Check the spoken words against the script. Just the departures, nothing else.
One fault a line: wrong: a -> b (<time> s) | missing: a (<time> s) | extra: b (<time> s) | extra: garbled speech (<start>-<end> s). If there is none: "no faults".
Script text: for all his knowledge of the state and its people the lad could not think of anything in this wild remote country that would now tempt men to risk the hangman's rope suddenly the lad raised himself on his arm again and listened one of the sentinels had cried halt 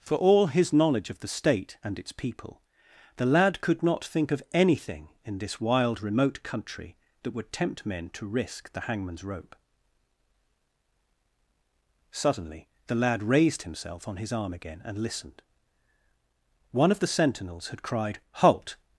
missing: now (7.5 s)